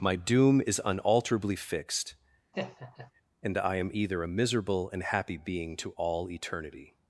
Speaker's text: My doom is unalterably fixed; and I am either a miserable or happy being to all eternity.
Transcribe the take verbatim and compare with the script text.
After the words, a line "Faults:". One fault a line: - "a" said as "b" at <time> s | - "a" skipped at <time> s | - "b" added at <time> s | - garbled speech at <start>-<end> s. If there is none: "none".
My doom is unalterably fixed; and I am either a miserable and happy being to all eternity.
Faults:
- "or" said as "and" at 4.9 s